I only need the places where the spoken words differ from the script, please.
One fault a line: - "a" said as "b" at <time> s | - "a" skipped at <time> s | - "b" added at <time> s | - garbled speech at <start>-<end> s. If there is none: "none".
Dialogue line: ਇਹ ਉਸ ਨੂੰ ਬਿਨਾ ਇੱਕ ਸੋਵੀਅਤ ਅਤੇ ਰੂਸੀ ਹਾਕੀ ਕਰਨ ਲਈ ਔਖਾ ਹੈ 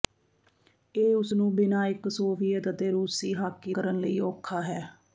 none